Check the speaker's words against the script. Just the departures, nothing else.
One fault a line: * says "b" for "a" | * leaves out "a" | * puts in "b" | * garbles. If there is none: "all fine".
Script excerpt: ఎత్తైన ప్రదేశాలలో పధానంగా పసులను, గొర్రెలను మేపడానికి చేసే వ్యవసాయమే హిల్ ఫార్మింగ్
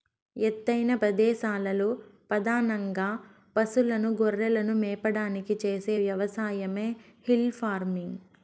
all fine